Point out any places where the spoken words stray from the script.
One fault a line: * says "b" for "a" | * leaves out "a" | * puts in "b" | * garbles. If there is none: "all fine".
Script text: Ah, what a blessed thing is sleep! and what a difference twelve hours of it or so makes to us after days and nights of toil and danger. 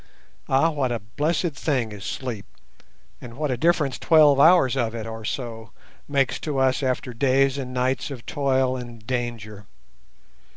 all fine